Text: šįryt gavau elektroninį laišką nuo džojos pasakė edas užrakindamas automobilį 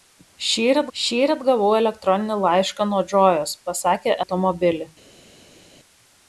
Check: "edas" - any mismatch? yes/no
yes